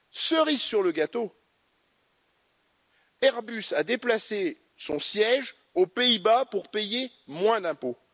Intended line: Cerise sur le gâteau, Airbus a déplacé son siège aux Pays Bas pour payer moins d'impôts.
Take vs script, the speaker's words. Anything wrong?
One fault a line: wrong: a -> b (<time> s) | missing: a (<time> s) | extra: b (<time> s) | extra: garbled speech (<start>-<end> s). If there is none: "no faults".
no faults